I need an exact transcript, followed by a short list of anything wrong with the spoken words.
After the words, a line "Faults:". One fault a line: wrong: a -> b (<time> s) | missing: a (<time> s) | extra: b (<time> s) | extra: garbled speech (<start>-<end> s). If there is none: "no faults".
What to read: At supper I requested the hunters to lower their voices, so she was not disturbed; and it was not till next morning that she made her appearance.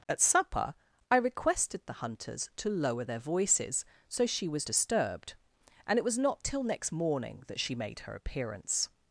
At supper I requested the hunters to lower their voices, so she was disturbed; and it was not till next morning that she made her appearance.
Faults:
missing: not (4.7 s)